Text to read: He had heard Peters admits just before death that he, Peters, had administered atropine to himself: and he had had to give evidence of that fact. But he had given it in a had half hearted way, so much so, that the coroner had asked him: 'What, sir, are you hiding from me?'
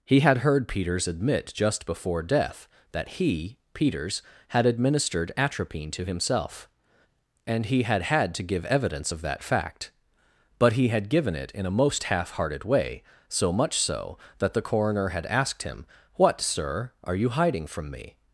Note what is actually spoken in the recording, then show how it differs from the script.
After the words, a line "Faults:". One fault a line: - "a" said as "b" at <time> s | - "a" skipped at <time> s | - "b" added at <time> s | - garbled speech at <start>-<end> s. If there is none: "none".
He had heard Peters admit just before death that he, Peters, had administered atropine to himself: and he had had to give evidence of that fact. But he had given it in a most half hearted way, so much so, that the coroner had asked him: 'What, sir, are you hiding from me?'
Faults:
- "admits" said as "admit" at 1.1 s
- "had" said as "most" at 11.7 s